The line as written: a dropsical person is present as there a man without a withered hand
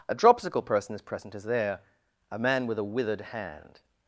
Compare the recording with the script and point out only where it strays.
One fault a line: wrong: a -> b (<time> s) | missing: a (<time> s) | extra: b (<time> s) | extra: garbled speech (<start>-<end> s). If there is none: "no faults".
wrong: without -> with (2.7 s)